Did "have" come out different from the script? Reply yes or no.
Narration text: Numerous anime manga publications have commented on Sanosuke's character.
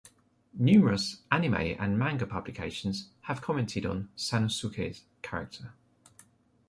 no